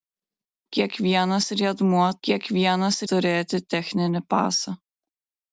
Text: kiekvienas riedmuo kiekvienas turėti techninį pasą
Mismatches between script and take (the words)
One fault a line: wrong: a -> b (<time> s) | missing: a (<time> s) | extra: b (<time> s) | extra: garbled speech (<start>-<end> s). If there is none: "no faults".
no faults